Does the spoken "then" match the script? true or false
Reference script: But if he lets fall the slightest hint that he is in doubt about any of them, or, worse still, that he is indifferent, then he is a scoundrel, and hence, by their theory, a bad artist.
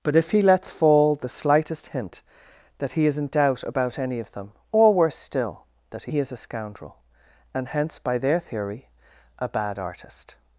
false